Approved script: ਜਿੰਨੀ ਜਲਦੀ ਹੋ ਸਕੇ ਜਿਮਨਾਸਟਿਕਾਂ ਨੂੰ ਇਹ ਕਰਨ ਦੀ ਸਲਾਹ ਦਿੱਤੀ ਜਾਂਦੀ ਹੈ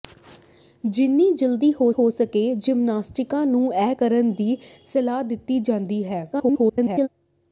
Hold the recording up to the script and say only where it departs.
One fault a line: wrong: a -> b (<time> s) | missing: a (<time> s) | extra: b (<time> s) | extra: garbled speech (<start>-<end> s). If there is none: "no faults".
extra: ਹੋ (1.9 s)
extra: garbled speech (6.3-7.1 s)